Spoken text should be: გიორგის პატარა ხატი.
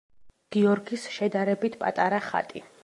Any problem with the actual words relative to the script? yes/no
yes